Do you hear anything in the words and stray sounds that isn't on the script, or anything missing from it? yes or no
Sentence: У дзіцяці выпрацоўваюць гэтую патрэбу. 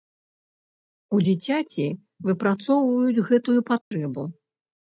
yes